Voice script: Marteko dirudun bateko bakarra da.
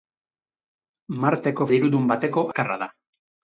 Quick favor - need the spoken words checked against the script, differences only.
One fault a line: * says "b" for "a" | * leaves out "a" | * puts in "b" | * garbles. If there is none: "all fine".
all fine